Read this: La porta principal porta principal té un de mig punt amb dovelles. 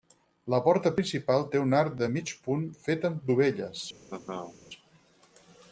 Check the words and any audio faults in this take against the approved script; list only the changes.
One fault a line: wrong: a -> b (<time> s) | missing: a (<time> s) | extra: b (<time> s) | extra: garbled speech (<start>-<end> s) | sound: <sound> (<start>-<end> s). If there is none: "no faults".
missing: porta principal (1.4 s)
extra: arc (1.8 s)
extra: fet (2.8 s)
sound: laugh (4.1-4.6 s)